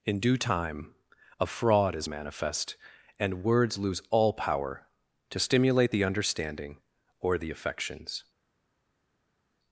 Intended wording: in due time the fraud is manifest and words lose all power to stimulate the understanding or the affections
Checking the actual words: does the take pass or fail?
fail